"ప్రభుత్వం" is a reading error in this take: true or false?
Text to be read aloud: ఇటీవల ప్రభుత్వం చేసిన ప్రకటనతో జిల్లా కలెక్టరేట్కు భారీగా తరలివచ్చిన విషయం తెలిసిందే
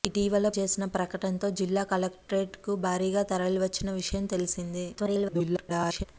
true